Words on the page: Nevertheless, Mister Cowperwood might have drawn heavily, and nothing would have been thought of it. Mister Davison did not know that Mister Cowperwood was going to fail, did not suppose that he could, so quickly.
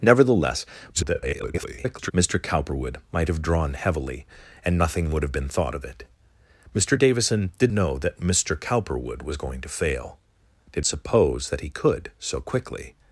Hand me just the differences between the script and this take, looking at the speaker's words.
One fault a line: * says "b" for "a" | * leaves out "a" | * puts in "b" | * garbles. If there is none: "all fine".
* garbles
* leaves out "not"
* leaves out "not"